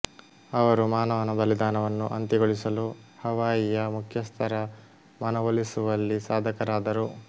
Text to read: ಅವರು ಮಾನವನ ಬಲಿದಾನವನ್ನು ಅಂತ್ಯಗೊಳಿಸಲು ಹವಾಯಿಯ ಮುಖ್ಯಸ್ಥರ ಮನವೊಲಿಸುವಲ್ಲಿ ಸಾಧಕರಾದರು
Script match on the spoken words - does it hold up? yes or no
yes